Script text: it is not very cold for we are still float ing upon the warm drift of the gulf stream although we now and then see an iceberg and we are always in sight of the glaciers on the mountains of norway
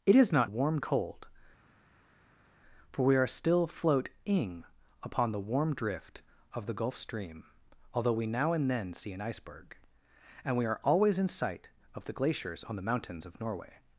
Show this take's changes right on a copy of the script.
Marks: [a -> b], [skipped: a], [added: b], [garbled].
it is not [very -> warm] cold for we are still float ing upon the warm drift of the gulf stream although we now and then see an iceberg and we are always in sight of the glaciers on the mountains of norway